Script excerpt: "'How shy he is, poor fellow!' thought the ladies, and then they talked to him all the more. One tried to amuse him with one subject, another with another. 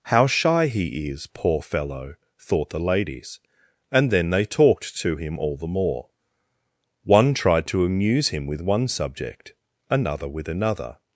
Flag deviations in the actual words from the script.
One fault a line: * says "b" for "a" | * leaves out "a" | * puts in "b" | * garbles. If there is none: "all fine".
all fine